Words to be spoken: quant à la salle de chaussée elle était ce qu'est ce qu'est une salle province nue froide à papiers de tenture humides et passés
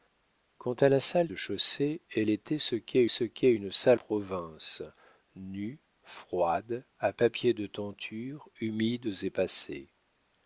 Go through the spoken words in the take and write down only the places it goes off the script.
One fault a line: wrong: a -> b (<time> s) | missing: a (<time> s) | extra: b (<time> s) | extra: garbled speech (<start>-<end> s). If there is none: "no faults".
no faults